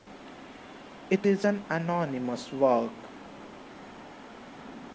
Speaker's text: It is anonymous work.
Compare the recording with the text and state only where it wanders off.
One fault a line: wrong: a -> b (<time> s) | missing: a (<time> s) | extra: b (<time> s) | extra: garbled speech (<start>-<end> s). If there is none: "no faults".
extra: an (1.4 s)